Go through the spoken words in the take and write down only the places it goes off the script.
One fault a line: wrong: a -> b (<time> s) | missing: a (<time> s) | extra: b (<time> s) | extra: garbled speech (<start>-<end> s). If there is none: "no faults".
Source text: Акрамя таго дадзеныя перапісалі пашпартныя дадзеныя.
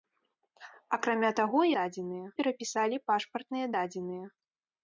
no faults